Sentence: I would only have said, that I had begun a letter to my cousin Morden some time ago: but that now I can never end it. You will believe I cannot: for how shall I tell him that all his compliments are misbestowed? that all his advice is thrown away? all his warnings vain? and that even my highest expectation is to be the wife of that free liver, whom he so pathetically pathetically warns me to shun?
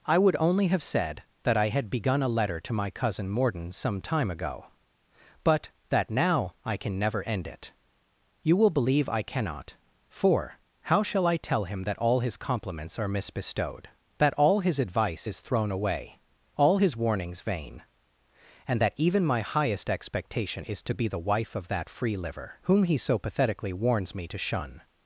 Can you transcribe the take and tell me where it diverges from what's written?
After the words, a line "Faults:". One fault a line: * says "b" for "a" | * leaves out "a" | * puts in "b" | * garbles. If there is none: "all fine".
I would only have said, that I had begun a letter to my cousin Morden some time ago: but that now I can never end it. You will believe I cannot: for how shall I tell him that all his compliments are misbestowed? that all his advice is thrown away? all his warnings vain? and that even my highest expectation is to be the wife of that free liver, whom he so pathetically warns me to shun?
Faults:
* leaves out "pathetically"